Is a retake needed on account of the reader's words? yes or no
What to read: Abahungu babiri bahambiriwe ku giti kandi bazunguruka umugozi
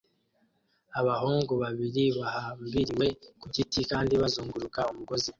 no